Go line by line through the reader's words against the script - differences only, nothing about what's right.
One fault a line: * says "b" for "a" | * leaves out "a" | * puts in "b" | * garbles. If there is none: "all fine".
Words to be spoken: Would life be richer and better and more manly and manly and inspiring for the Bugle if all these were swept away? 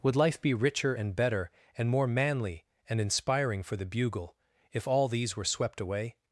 * leaves out "manly and"